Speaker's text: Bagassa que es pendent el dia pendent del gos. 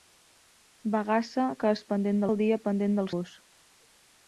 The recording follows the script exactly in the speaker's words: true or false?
true